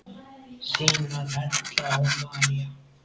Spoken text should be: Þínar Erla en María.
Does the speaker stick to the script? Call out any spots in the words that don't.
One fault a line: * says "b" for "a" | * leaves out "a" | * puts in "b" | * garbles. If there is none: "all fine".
* says "og" for "en"